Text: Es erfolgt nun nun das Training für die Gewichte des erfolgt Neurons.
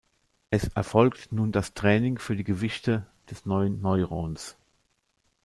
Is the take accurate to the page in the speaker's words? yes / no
no